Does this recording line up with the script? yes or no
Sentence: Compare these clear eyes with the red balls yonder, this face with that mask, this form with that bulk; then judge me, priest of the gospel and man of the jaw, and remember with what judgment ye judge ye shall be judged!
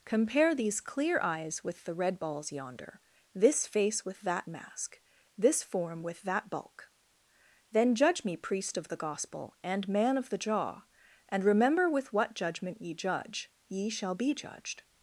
yes